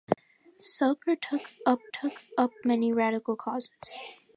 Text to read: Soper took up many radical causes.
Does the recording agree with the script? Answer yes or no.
no